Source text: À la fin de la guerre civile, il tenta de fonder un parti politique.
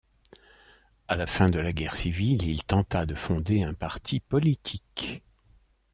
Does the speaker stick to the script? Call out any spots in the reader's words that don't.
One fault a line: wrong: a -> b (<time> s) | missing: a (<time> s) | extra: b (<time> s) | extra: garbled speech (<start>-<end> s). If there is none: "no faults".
no faults